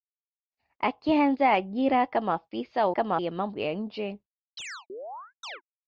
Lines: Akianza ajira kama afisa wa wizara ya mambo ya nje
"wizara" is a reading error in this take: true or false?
true